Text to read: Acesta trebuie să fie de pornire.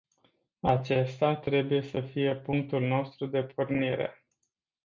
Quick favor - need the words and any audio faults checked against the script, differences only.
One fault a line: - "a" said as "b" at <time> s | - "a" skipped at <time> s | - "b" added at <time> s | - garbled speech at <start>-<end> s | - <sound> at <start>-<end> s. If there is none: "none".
- "punctul nostru" added at 2.4 s